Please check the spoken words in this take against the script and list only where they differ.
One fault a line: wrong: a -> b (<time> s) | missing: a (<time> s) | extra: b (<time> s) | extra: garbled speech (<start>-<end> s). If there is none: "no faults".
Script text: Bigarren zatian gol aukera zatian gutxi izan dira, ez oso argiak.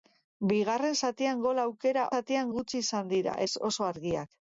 no faults